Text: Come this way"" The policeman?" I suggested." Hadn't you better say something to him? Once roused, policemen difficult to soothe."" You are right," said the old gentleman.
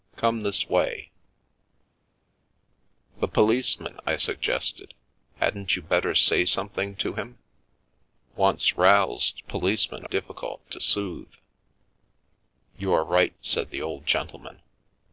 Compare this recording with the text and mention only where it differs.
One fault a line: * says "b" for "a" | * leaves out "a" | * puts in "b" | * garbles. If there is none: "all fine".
all fine